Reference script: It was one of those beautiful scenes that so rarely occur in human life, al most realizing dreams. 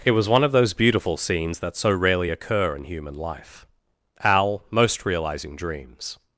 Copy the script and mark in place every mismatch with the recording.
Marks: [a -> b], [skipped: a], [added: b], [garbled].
It was one of those beautiful scenes that so rarely occur in human life, al most realizing dreams.